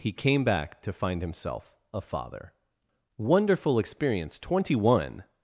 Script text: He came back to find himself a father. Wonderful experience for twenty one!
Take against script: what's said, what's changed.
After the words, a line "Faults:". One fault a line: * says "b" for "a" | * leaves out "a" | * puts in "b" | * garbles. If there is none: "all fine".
He came back to find himself a father. Wonderful experience twenty one!
Faults:
* leaves out "for"